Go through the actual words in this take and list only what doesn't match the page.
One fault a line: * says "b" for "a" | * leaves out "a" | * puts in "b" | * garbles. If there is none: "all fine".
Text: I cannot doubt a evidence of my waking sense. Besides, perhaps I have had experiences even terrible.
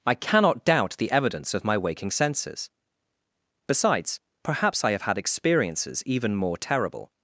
* says "the" for "a"
* says "senses" for "sense"
* puts in "more"